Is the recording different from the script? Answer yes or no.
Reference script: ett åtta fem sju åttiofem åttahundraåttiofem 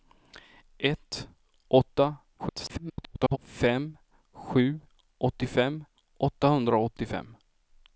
yes